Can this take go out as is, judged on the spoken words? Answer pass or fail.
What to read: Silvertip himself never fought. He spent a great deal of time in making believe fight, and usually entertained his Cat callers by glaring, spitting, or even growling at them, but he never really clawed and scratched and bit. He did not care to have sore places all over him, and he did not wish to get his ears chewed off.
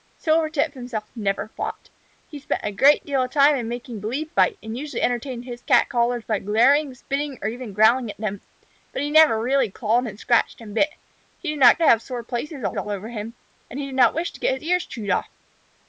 fail